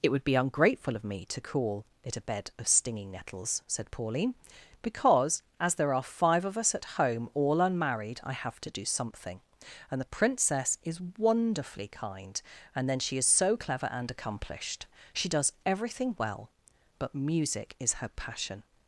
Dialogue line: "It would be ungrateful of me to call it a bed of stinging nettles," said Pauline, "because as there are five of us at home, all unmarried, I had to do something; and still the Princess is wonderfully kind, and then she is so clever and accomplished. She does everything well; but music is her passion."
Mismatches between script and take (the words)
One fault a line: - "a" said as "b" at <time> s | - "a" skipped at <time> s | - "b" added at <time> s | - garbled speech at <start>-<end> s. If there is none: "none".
- "had" said as "have" at 8.3 s
- "still" skipped at 10.0 s